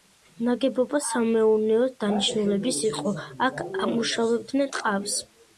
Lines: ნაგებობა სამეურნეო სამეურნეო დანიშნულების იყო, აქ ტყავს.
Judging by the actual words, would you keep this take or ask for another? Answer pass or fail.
fail